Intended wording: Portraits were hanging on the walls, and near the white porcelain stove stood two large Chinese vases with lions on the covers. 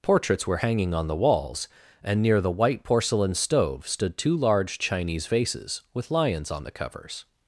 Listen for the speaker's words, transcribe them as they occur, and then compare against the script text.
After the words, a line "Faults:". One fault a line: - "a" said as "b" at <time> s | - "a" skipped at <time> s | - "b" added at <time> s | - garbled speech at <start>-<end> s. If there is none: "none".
Portraits were hanging on the walls, and near the white porcelain stove stood two large Chinese vases with lions on the covers.
Faults:
none